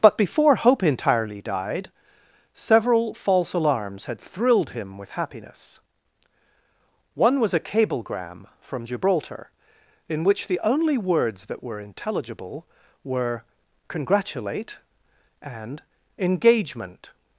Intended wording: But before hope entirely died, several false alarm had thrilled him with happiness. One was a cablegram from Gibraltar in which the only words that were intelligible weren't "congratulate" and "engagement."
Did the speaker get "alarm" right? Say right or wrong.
wrong